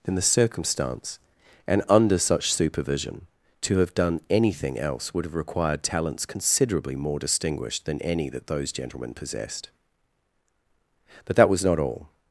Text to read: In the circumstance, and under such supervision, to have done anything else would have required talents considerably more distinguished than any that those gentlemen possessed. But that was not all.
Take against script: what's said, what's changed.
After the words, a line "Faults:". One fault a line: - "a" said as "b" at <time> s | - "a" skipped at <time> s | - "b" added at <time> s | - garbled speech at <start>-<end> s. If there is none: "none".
In the circumstance, and under such supervision, to have done anything else would have required talents considerably more distinguished than any that those gentlemen possessed. But that was not all.
Faults:
none